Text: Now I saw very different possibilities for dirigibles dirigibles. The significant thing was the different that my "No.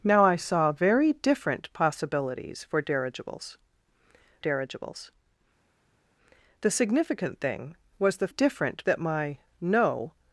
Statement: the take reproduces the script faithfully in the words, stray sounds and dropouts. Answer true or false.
true